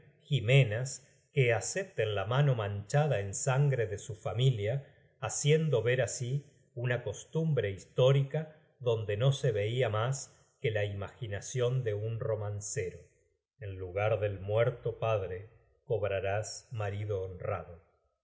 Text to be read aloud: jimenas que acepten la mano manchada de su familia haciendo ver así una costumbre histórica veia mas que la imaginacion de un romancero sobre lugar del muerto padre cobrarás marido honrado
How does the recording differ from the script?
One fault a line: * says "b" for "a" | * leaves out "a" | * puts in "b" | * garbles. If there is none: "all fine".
* puts in "en sangre"
* puts in "donde no se"
* says "en" for "sobre"